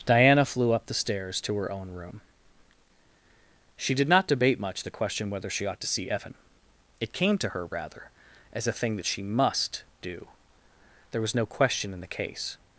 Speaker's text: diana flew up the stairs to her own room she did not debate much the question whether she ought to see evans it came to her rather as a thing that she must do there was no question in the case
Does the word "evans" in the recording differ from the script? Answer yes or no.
yes